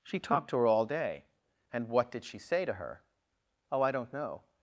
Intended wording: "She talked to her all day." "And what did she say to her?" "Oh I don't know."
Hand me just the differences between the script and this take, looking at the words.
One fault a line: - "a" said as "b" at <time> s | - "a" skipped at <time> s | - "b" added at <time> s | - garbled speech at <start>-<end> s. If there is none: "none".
none